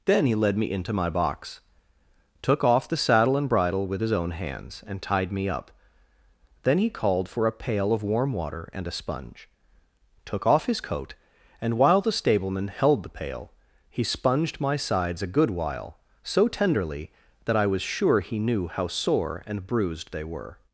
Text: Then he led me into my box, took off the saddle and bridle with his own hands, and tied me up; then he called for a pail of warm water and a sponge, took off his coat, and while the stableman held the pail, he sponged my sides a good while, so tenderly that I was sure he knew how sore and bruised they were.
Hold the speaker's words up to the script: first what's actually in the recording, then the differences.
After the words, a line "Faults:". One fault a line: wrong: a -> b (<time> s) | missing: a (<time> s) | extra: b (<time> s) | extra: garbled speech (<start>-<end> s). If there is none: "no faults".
Then he led me into my box, took off the saddle and bridle with his own hands, and tied me up; then he called for a pail of warm water and a sponge, took off his coat, and while the stableman held the pail, he sponged my sides a good while, so tenderly that I was sure he knew how sore and bruised they were.
Faults:
no faults